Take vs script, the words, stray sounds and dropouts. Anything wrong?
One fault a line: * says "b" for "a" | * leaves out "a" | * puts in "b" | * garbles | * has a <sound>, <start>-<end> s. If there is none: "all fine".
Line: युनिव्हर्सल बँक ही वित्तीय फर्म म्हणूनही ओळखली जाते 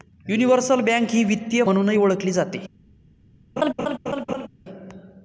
* leaves out "फर्म"
* has a laugh, 3.6-4.5 s